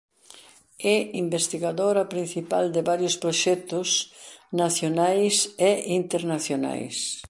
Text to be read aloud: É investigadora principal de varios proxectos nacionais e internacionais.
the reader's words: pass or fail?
pass